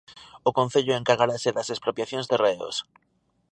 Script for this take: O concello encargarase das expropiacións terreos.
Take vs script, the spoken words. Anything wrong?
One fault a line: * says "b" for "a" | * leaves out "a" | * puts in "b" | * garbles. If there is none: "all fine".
all fine